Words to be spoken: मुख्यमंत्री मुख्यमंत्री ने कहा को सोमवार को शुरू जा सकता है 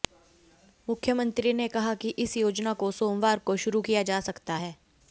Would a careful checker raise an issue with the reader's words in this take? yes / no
yes